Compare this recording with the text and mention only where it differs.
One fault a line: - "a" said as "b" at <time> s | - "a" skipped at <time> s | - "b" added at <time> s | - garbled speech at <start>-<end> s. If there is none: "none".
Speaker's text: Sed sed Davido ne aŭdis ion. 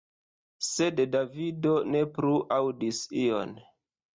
- "sed" skipped at 1.0 s
- "plu" added at 2.2 s